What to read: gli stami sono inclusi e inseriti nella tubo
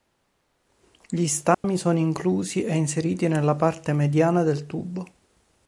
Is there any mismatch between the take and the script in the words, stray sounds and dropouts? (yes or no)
yes